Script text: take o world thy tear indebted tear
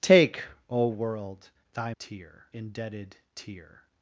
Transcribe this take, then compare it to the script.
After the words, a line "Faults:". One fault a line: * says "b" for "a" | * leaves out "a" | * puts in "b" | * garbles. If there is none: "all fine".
take o world thy tear indebted tear
Faults:
all fine